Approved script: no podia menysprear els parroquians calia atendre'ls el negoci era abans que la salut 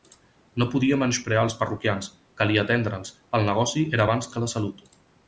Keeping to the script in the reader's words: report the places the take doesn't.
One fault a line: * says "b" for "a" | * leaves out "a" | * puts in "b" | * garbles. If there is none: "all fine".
all fine